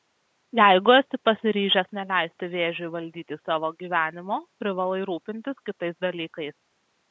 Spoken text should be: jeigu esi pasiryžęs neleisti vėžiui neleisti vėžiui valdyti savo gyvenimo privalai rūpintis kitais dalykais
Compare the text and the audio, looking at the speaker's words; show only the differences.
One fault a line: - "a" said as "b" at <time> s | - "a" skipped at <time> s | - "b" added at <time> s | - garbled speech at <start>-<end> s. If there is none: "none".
- "neleisti vėžiui" skipped at 2.9 s